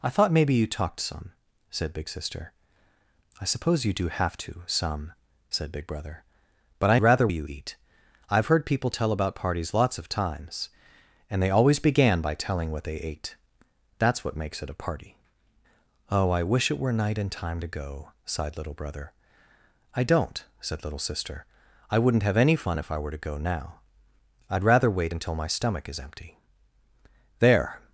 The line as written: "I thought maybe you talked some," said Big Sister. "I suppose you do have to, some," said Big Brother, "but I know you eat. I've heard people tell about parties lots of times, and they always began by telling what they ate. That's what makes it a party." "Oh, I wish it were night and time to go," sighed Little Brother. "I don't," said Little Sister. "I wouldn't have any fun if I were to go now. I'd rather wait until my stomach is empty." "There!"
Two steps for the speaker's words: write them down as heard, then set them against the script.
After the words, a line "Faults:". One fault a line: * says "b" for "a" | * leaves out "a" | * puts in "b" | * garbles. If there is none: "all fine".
"I thought maybe you talked some," said Big Sister. "I suppose you do have to, some," said Big Brother, "but I rather you eat. I've heard people tell about parties lots of times, and they always began by telling what they ate. That's what makes it a party." "Oh, I wish it were night and time to go," sighed Little Brother. "I don't," said Little Sister. "I wouldn't have any fun if I were to go now. I'd rather wait until my stomach is empty." "There!"
Faults:
* says "rather" for "know"